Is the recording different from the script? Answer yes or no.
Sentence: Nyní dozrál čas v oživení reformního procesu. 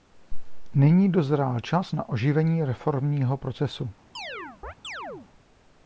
yes